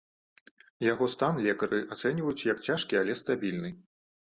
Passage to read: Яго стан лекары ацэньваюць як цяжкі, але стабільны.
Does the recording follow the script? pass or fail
pass